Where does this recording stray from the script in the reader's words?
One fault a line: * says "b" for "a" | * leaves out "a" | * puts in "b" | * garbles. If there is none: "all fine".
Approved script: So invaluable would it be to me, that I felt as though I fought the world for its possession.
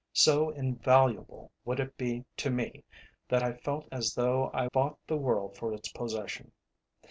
all fine